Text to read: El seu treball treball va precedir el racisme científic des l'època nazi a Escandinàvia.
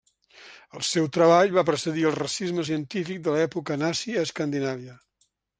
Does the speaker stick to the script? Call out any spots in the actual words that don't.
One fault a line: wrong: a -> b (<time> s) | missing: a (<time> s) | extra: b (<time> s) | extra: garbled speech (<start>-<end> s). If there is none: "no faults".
missing: treball (1.5 s)
wrong: des -> de (3.3 s)